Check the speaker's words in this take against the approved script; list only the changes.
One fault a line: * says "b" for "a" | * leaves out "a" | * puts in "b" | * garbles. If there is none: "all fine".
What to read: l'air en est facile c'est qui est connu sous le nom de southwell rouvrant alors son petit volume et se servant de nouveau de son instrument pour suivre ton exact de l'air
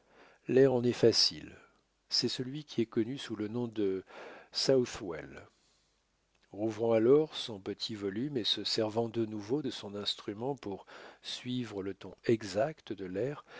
* puts in "celui"
* puts in "le"